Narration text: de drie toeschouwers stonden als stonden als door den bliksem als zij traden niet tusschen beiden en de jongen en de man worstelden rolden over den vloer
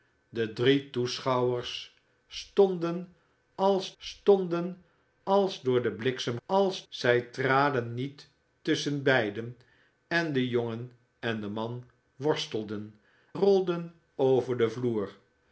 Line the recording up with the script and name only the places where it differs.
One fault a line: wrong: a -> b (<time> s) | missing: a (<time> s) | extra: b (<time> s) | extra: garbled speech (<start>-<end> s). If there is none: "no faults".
no faults